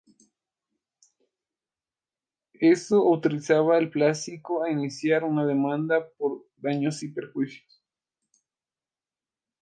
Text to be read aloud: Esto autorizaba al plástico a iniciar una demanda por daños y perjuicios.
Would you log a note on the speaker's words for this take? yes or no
no